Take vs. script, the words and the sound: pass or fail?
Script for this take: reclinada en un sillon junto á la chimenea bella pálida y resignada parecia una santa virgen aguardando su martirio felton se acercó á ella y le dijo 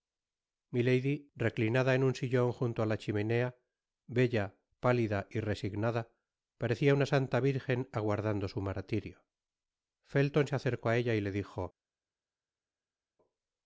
pass